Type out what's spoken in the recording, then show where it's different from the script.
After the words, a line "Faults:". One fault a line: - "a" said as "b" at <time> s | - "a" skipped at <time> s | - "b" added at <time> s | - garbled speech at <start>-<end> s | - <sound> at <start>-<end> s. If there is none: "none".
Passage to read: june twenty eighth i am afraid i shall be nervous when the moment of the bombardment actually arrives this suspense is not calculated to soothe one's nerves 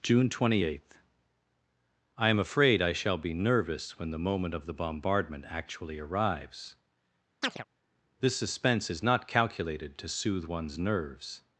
june twenty eighth i am afraid i shall be nervous when the moment of the bombardment actually arrives this suspense is not calculated to soothe one's nerves
Faults:
- chirp at 7.4-7.6 s